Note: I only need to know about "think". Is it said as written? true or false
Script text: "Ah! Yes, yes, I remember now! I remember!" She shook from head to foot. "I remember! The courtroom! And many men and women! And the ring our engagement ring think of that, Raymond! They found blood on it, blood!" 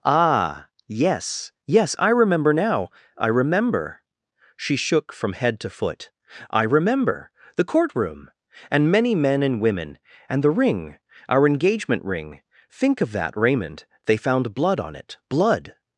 true